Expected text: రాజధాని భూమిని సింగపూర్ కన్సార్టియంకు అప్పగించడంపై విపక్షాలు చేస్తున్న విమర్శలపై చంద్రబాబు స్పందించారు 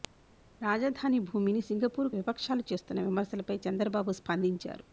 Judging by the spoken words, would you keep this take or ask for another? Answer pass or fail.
fail